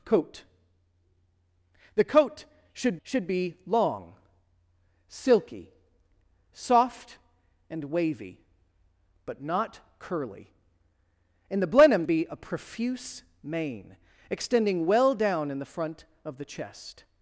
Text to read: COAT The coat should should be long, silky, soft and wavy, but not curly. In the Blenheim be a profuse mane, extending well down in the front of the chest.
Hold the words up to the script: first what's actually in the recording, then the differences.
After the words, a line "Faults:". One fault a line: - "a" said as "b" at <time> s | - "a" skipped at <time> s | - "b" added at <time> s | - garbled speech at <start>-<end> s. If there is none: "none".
COAT The coat should should be long, silky, soft and wavy, but not curly. In the Blenheim be a profuse mane, extending well down in the front of the chest.
Faults:
none